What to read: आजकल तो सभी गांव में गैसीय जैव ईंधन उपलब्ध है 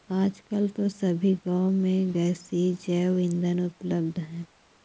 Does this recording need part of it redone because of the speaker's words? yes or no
no